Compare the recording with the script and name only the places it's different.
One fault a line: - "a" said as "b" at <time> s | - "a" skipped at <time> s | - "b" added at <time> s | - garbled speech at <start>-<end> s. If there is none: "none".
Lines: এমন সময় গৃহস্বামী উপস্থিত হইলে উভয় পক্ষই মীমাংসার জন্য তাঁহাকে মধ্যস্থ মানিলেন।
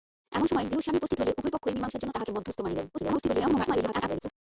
- garbled speech at 2.9-4.3 s